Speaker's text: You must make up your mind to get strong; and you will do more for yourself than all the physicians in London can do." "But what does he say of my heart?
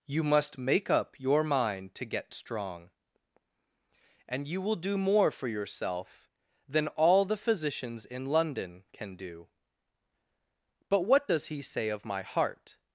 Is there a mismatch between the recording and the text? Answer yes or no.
no